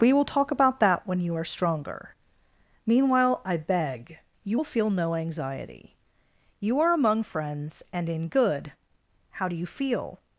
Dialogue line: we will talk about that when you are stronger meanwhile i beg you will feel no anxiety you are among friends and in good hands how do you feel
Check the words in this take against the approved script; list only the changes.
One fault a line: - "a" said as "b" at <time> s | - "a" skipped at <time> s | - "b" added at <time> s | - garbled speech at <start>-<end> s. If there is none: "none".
- "hands" skipped at 8.7 s